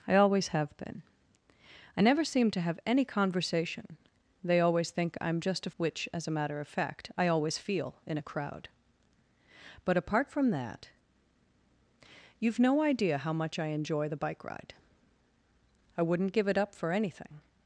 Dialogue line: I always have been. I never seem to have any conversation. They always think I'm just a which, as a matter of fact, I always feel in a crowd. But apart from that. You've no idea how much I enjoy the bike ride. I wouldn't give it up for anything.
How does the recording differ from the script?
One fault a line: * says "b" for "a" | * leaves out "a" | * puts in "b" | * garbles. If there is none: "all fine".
all fine